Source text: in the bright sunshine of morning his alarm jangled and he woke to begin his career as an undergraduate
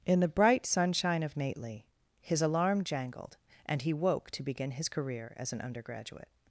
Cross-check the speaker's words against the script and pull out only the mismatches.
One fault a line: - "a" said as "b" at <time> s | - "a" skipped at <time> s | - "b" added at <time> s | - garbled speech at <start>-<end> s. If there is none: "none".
- "morning" said as "nately" at 1.4 s